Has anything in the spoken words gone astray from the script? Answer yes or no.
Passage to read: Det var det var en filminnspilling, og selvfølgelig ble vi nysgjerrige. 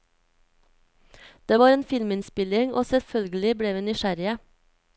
yes